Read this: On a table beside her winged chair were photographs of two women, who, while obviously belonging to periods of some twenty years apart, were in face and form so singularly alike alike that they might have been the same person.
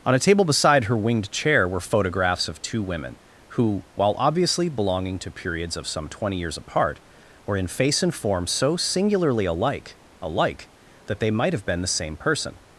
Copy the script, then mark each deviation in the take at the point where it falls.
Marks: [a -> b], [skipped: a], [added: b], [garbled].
On a table beside her winged chair were photographs of two women, who, while obviously belonging to periods of some twenty years apart, were in face and form so singularly alike alike that they might have been the same person.